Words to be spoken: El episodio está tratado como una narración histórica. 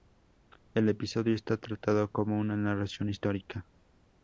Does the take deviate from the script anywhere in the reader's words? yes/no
no